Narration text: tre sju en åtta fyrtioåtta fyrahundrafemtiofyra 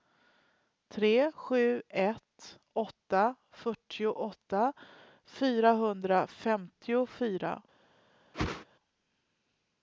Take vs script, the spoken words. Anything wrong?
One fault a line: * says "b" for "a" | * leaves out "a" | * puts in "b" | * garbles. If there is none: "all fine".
* says "ett" for "en"